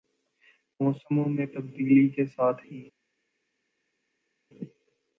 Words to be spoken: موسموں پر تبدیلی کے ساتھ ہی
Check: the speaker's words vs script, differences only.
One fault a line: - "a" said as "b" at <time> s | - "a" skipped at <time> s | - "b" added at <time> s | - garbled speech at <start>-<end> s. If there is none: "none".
- "پر" said as "میں" at 1.3 s